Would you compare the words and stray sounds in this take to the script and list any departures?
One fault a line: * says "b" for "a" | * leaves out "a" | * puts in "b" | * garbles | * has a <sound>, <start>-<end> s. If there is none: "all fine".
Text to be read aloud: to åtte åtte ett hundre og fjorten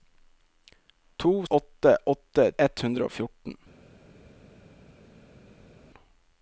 all fine